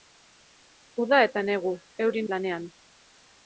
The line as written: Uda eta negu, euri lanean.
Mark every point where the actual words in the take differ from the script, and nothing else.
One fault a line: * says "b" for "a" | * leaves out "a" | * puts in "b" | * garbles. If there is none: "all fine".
all fine